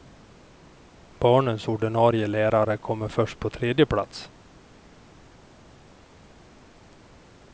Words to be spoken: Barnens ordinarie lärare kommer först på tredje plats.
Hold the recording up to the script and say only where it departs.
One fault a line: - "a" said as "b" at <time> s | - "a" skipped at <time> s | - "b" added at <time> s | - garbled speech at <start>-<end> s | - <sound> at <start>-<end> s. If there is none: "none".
none